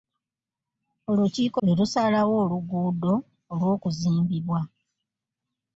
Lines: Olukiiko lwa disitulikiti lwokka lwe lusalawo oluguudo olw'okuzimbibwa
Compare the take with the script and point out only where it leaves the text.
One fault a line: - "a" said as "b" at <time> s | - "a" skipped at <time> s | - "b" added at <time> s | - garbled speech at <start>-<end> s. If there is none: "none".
- "lwa disitulikiti lwokka" skipped at 1.6 s